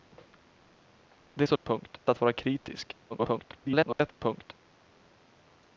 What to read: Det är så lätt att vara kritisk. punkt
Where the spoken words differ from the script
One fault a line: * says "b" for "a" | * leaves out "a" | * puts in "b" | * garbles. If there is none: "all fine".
* says "punkt" for "lätt"
* garbles